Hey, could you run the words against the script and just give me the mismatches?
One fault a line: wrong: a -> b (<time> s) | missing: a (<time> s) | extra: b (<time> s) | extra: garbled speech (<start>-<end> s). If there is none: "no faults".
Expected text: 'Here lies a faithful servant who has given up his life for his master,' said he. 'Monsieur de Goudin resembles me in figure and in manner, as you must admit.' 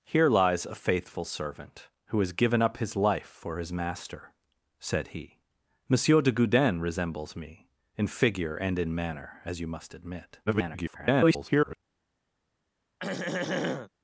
extra: garbled speech (10.5-11.8 s)